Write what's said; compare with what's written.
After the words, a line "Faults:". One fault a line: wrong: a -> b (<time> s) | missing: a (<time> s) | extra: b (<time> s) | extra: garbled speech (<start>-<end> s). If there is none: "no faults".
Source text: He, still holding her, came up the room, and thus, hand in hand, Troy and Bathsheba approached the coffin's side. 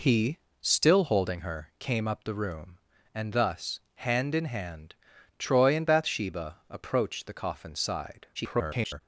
He, still holding her, came up the room, and thus, hand in hand, Troy and Bathsheba approached the coffin's side. [garbled]
Faults:
extra: garbled speech (8.3-9.0 s)